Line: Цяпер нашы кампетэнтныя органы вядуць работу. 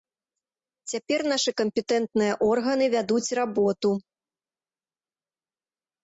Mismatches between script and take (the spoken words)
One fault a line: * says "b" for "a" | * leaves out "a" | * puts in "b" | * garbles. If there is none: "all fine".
all fine